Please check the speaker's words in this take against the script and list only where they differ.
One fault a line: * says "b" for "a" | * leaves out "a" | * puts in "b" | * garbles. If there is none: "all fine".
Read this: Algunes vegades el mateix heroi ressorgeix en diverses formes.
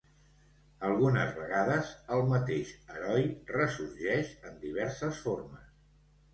all fine